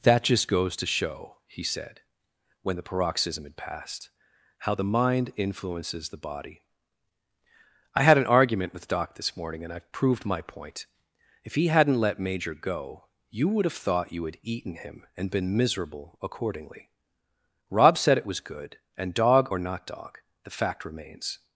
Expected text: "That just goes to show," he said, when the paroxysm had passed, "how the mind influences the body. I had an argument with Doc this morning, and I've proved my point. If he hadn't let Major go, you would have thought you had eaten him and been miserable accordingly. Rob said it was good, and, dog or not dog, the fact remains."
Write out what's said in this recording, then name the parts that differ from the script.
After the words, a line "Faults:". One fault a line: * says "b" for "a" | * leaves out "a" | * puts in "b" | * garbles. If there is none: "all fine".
"That just goes to show," he said, when the paroxysm had passed, "how the mind influences the body. I had an argument with Doc this morning, and I've proved my point. If he hadn't let Major go, you would have thought you had eaten him and been miserable accordingly. Rob said it was good, and, dog or not dog, the fact remains."
Faults:
all fine